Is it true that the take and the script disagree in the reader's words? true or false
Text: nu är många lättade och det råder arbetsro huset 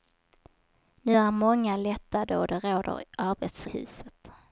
false